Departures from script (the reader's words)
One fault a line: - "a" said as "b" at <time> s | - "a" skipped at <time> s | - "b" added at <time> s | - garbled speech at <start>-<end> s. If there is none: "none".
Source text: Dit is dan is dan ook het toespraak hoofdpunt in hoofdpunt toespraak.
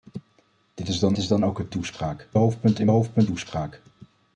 none